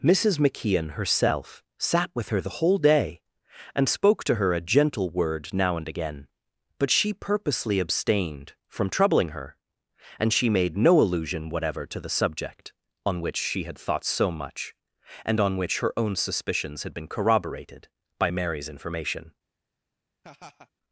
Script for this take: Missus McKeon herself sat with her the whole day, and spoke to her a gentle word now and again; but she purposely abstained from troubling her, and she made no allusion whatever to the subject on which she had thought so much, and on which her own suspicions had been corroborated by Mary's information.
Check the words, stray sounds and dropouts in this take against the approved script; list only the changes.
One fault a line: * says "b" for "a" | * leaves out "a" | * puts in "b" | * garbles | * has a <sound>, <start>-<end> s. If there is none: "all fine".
* has a laugh, 20.2-20.7 s